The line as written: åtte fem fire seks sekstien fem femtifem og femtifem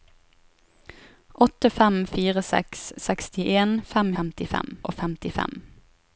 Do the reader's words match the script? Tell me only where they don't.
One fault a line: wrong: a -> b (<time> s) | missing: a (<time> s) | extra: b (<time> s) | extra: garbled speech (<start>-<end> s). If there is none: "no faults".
no faults